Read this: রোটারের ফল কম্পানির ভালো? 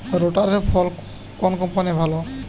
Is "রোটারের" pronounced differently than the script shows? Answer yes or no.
no